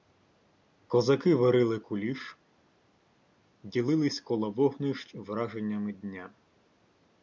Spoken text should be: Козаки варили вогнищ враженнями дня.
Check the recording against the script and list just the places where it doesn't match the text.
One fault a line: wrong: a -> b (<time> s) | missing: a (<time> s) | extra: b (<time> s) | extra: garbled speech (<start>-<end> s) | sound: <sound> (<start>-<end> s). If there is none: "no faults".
extra: куліш ділились коло (1.8 s)